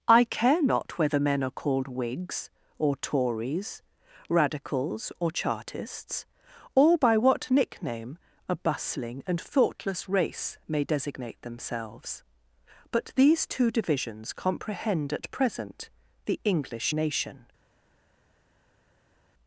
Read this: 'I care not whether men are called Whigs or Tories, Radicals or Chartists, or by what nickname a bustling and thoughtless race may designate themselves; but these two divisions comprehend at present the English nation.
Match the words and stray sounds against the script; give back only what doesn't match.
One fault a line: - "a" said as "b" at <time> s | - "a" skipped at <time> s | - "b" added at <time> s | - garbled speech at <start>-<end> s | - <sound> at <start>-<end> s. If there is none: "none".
none